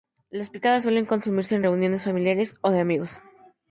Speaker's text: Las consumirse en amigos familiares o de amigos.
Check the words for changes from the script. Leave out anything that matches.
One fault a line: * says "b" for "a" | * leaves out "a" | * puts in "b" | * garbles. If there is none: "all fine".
* puts in "picadas suelen"
* says "reuniones" for "amigos"